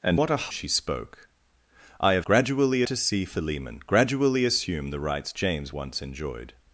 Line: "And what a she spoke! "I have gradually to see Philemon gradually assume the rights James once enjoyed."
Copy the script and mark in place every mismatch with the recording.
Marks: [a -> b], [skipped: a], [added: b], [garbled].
"And what a she spoke! "I have gradually to see Philemon gradually assume the rights James once enjoyed."